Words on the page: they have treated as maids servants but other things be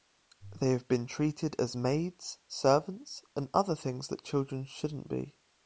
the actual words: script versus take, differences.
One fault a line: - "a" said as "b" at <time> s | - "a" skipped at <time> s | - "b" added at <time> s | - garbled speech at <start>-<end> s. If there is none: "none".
- "been" added at 0.9 s
- "but" said as "and" at 3.4 s
- "that children shouldn't" added at 4.1 s